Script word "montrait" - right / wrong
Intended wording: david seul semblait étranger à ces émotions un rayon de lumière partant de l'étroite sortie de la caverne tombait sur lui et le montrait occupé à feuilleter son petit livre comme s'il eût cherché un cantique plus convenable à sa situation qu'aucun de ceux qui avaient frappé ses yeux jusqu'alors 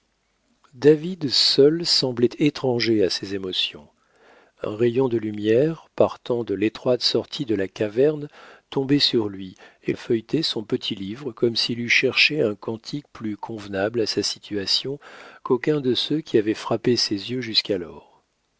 wrong